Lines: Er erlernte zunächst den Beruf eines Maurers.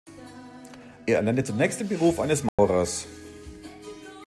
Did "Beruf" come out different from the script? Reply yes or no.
no